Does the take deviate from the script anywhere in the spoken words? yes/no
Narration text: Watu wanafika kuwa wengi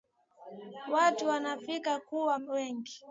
no